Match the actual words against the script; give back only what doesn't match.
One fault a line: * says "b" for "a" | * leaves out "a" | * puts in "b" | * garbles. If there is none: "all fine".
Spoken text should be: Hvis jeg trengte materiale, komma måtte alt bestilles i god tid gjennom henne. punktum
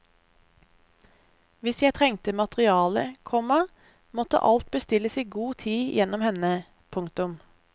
all fine